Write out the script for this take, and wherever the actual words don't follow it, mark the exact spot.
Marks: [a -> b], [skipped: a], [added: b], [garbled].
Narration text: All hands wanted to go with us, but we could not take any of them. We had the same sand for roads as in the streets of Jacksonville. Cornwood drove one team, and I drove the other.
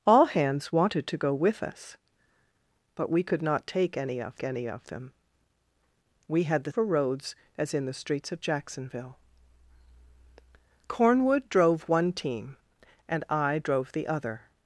All hands wanted to go with us, but we could not take any of [added: any of] them. We had the [skipped: same sand] for roads as in the streets of Jacksonville. Cornwood drove one team, and I drove the other.